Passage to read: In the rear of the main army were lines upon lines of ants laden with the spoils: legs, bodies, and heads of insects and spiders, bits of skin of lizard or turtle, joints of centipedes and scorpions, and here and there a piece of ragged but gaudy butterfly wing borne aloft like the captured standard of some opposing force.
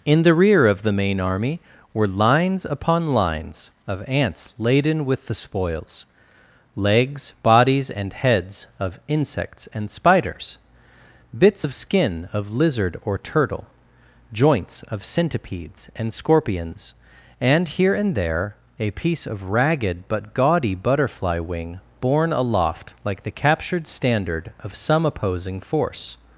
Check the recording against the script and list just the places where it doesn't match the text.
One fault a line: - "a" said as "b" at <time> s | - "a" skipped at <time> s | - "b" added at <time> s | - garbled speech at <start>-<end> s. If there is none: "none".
none